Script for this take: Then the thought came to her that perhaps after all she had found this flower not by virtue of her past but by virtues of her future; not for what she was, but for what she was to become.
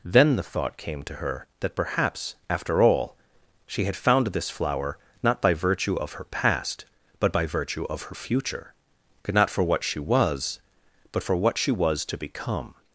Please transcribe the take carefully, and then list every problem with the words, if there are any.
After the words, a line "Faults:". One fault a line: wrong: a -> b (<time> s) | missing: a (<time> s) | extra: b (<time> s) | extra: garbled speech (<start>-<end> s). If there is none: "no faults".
Then the thought came to her that perhaps after all she had found this flower not by virtue of her past but by virtue of her future; not for what she was, but for what she was to become.
Faults:
wrong: virtues -> virtue (7.5 s)